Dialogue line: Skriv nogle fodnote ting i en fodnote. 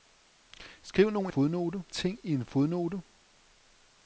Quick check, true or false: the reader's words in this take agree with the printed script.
true